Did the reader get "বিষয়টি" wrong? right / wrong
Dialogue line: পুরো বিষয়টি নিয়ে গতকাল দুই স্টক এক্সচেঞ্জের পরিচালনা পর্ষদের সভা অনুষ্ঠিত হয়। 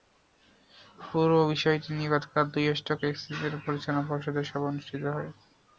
right